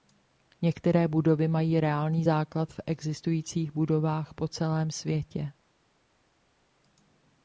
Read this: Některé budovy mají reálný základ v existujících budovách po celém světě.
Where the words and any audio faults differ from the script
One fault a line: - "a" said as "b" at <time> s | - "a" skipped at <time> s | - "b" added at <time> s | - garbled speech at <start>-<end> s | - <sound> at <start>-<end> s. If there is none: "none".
none